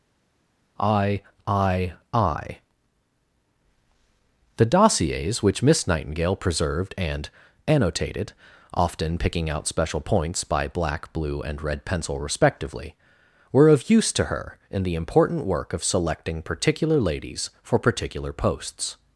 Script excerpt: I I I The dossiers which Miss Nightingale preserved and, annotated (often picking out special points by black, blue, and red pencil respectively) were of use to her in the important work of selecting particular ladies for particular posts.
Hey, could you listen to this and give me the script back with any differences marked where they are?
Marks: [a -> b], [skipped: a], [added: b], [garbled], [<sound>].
I I I The dossiers which Miss Nightingale preserved and, annotated (often picking out special points by black, blue, and red pencil respectively) were of use to her in the important work of selecting particular ladies for particular posts.